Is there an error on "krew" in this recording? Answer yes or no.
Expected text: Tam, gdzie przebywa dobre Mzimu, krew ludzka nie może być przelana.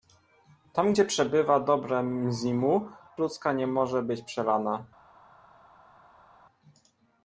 yes